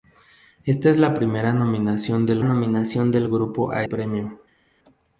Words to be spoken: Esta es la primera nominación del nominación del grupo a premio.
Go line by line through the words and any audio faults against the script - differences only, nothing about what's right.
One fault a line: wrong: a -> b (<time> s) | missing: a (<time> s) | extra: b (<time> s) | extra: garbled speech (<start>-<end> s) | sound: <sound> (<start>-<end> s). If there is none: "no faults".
no faults